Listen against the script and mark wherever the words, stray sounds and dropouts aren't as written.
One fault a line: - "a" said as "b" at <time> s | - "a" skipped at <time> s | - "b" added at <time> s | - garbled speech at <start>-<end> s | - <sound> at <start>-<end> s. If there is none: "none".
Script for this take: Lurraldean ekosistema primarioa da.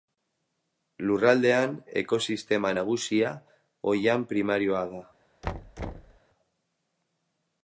- "nagusia oihan" added at 2.8 s
- thud at 5.4-6.2 s